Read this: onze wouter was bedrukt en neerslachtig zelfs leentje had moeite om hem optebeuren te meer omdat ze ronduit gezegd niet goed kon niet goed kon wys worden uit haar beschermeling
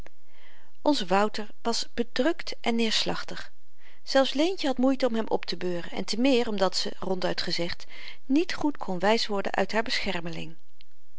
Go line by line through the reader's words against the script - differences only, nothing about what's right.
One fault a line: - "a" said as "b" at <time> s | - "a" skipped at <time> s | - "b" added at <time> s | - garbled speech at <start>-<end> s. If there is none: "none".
- "en" added at 5.9 s
- "niet goed kon" skipped at 9.0 s